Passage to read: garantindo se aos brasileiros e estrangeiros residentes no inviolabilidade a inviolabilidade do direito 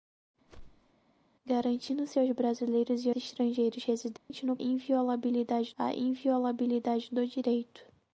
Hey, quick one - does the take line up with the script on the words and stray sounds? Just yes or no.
no